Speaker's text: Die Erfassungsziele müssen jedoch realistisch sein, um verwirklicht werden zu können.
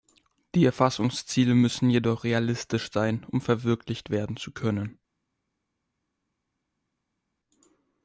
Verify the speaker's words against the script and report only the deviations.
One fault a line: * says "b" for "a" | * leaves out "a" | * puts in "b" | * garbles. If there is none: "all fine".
all fine